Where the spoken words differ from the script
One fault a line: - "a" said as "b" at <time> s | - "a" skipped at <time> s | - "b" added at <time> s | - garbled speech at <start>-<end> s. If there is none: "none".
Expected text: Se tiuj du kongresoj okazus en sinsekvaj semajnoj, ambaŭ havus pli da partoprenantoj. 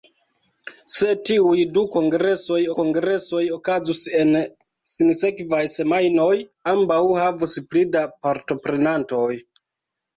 - "kongresoj" added at 2.8 s